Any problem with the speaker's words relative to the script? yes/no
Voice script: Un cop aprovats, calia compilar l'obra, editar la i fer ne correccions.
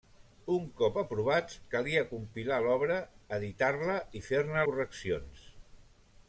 no